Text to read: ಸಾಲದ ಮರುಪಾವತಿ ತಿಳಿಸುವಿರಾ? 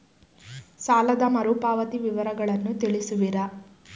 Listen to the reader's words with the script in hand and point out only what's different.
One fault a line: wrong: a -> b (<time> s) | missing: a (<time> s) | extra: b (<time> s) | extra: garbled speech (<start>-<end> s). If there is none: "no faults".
extra: ವಿವರಗಳನ್ನು (2.0 s)